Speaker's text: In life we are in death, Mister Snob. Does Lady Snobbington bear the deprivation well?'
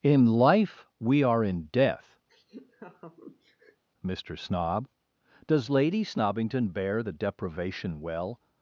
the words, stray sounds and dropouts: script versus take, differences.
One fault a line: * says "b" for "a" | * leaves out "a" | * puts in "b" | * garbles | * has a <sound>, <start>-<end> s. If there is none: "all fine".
* has a laugh, 2.3-3.8 s